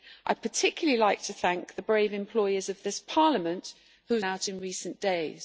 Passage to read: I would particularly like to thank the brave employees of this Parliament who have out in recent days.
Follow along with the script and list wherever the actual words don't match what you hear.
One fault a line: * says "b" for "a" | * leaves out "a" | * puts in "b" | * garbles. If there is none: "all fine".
all fine